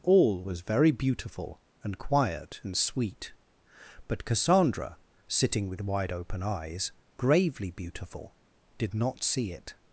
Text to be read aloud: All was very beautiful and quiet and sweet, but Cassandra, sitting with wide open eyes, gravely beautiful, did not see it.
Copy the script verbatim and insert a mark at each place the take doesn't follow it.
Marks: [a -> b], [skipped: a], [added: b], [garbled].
All was very beautiful and quiet and sweet, but Cassandra, sitting with wide open eyes, gravely beautiful, did not see it.